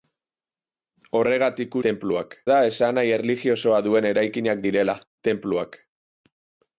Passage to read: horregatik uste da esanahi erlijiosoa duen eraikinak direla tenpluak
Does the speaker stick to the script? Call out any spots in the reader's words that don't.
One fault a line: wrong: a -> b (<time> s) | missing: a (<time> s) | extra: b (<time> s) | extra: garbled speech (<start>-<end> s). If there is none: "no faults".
wrong: uste -> tenpluak (1.9 s)